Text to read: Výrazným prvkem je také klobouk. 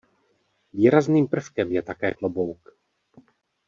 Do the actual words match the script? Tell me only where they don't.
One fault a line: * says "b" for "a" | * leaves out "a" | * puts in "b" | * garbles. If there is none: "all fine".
all fine